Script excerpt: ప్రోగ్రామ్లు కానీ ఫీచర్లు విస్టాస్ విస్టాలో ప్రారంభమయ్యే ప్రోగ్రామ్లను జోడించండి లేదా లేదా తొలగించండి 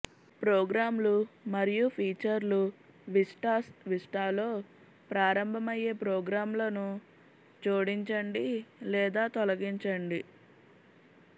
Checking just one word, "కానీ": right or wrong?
wrong